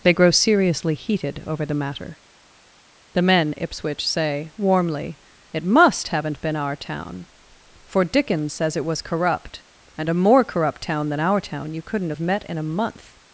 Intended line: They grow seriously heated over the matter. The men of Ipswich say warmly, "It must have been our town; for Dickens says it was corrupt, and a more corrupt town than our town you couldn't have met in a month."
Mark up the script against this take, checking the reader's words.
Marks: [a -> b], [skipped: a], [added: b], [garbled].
They grow seriously heated over the matter. The men [skipped: of] Ipswich say warmly, "It must [have -> haven't] been our town; for Dickens says it was corrupt, and a more corrupt town than our town you couldn't have met in a month."